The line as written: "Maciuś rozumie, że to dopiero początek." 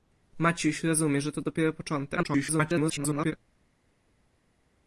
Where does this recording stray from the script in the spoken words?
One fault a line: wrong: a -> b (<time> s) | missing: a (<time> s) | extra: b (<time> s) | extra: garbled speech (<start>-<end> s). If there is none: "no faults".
extra: garbled speech (2.2-3.3 s)